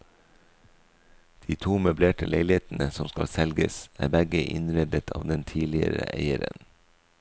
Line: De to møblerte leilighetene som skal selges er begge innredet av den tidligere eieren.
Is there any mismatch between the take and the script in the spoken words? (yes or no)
no